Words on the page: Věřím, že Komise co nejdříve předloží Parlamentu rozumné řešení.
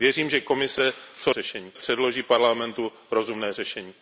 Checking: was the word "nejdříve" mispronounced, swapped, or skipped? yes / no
yes